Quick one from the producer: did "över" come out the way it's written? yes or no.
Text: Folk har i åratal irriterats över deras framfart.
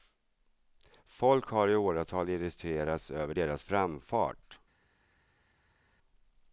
yes